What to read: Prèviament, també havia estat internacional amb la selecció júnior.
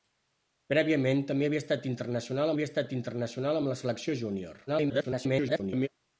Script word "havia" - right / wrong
right